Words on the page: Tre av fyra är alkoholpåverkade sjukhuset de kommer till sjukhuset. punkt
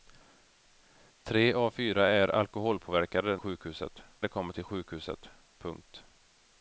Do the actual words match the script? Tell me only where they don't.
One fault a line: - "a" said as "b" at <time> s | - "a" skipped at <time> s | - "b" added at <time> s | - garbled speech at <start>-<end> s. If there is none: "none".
none